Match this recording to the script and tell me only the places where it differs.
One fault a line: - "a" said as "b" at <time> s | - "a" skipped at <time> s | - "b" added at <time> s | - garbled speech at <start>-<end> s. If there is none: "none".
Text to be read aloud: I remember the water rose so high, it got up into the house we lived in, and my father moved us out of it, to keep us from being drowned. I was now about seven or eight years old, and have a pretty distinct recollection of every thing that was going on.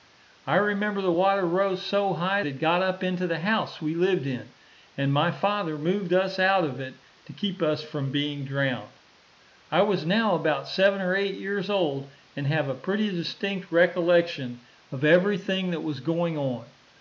none